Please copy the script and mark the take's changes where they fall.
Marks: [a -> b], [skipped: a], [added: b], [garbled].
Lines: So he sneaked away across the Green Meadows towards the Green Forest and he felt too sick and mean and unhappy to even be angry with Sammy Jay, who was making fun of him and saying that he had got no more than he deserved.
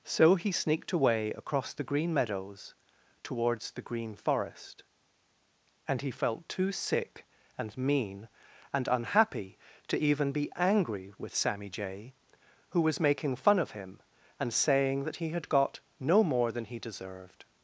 So he sneaked away across the Green Meadows towards the Green Forest and he felt too sick and mean and unhappy to even be angry with Sammy Jay, who was making fun of him and saying that he had got no more than he deserved.